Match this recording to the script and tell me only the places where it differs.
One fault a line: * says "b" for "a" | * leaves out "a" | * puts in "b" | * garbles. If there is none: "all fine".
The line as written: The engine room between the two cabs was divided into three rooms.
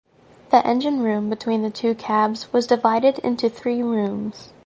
all fine